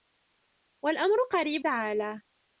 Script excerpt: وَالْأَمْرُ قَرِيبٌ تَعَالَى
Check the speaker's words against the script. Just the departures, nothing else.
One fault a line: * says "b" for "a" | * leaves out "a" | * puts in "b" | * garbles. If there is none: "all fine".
all fine